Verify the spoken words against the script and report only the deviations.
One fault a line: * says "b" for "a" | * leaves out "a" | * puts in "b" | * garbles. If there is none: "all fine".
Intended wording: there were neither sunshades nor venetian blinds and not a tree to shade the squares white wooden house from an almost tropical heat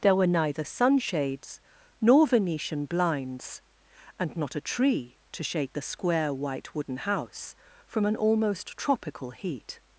* says "square" for "squares"